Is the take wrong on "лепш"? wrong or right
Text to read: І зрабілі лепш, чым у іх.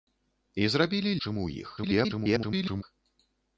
wrong